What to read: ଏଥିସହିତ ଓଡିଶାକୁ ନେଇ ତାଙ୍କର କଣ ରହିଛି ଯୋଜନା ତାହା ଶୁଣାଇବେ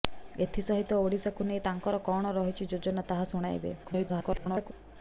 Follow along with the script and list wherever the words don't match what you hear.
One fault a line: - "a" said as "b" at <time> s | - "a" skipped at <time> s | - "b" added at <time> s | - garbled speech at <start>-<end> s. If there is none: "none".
- garbled speech at 3.8-4.7 s